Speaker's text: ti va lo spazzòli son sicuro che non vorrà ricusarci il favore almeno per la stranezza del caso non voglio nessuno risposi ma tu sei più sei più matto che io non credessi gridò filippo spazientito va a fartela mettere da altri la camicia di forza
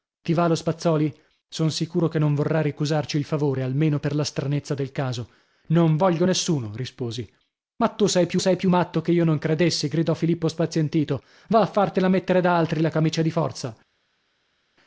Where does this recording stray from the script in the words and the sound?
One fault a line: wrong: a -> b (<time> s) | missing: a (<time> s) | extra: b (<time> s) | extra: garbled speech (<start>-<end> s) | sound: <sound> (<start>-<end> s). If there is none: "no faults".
no faults